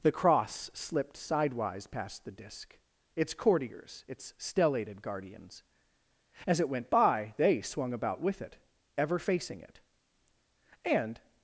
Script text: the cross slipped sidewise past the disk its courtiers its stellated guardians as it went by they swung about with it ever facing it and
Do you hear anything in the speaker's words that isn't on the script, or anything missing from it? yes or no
no